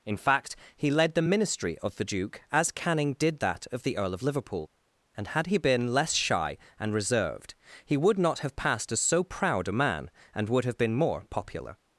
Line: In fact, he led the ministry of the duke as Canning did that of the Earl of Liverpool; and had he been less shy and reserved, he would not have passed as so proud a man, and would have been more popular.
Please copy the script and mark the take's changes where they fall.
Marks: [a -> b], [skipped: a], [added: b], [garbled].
In fact, he led the ministry of the duke as Canning did that of the Earl of Liverpool; and had he been less shy and reserved, he would not have passed as so proud a man, and would have been more popular.